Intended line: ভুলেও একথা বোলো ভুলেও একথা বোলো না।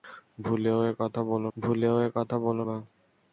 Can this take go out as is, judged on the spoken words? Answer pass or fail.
pass